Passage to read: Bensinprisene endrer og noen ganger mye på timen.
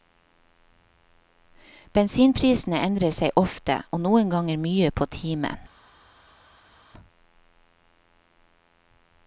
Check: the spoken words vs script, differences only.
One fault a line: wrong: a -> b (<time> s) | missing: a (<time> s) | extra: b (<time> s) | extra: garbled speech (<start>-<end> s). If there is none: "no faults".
extra: seg ofte (3.1 s)